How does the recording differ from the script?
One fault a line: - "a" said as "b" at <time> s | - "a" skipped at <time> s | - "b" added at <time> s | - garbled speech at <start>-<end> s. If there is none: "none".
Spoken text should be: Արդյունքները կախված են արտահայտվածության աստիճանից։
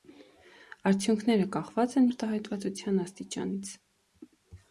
none